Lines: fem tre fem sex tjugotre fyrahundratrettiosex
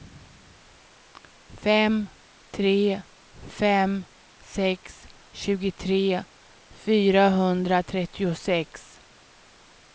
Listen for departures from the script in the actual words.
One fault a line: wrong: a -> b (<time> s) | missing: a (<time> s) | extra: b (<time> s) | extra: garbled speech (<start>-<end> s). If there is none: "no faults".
no faults